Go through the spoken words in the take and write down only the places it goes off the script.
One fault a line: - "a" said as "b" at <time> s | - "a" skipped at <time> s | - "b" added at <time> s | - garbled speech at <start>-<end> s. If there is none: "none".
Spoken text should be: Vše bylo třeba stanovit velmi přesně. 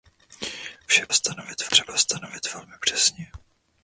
- "bylo" said as "stanovit" at 1.1 s